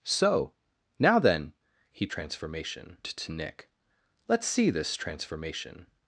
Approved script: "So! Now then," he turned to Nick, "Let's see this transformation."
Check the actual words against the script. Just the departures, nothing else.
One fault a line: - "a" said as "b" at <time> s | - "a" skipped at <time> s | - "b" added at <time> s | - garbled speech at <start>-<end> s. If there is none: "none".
- "turned" said as "transformation" at 2.1 s